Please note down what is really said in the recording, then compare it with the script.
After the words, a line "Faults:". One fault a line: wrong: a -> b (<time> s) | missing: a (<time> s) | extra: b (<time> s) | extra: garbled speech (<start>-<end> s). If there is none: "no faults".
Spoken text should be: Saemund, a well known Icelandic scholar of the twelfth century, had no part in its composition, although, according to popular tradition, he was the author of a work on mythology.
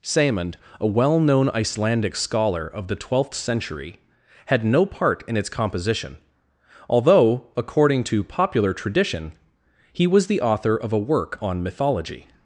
Saemund, a well known Icelandic scholar of the twelfth century, had no part in its composition, although, according to popular tradition, he was the author of a work on mythology.
Faults:
no faults